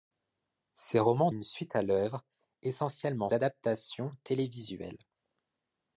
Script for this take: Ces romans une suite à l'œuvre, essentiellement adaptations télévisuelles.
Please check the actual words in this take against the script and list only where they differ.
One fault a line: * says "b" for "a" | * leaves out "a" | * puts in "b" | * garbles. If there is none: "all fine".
all fine